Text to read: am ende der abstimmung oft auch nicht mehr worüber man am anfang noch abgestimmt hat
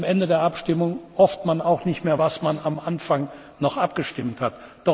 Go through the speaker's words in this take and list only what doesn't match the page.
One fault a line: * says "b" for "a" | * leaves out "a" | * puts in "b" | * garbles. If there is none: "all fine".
all fine